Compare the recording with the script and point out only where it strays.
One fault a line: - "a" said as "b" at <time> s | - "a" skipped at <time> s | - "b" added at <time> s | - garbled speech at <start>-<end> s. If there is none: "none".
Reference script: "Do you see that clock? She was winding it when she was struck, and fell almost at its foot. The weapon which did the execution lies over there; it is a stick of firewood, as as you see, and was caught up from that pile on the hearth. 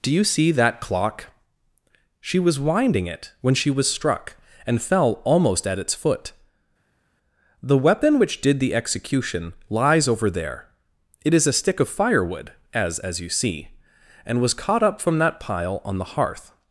none